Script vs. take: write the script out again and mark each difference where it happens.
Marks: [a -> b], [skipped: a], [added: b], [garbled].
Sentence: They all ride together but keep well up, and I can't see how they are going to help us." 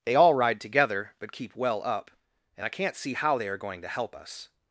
They all ride together but keep well up, and I can't see how they are going to help us."